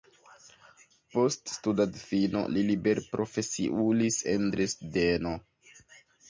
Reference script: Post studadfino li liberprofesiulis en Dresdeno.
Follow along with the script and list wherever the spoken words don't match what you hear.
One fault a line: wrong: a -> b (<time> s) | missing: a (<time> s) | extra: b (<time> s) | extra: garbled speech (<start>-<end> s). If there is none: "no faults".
no faults